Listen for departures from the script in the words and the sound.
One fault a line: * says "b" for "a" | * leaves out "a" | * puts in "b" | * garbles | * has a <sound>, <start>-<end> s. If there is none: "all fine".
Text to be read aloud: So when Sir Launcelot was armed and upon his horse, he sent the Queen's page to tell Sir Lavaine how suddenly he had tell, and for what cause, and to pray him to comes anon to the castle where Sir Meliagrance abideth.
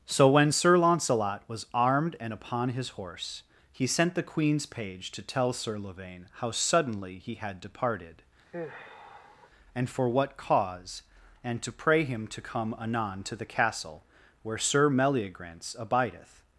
* says "departed" for "tell"
* has a sigh, 8.5-9.5 s
* says "come" for "comes"